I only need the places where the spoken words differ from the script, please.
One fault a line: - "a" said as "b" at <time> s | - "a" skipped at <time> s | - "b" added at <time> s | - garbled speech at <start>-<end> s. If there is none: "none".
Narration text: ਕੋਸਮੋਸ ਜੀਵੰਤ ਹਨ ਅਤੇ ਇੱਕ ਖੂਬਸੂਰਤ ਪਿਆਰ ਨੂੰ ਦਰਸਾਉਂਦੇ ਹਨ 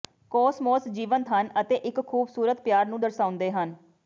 none